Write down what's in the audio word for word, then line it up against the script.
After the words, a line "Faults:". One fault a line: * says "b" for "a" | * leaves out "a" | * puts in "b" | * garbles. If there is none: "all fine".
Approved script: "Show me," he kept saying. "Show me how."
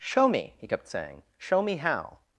"Show me," he kept saying. "Show me how."
Faults:
all fine